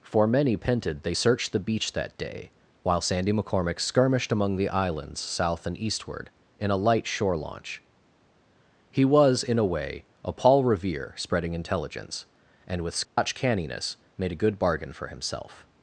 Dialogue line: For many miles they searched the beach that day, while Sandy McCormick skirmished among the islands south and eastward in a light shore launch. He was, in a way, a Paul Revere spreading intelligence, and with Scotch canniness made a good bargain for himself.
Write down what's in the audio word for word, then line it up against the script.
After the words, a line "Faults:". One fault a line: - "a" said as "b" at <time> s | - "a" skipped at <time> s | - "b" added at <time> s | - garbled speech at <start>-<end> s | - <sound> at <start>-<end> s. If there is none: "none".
For many pented they searched the beach that day, while Sandy McCormick skirmished among the islands south and eastward in a light shore launch. He was, in a way, a Paul Revere spreading intelligence, and with Scotch canniness made a good bargain for himself.
Faults:
- "miles" said as "pented" at 0.6 s
- dropout at 13.0-13.2 s